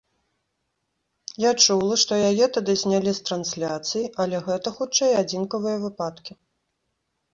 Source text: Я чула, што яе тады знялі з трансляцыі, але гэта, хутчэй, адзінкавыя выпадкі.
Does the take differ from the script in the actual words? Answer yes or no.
no